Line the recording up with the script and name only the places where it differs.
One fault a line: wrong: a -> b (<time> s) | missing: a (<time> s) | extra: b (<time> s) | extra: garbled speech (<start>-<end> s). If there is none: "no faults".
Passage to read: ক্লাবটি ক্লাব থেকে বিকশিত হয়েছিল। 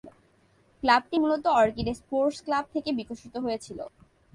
extra: মূলত অর্কিড স্পোর্টস (1.2 s)